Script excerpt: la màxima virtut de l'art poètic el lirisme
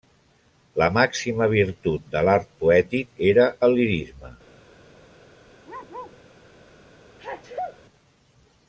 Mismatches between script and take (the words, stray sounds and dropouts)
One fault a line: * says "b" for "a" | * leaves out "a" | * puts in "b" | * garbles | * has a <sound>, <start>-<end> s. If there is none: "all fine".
* puts in "era"
* has a bark, 5.6-6.2 s
* has a sneeze, 7.2-7.8 s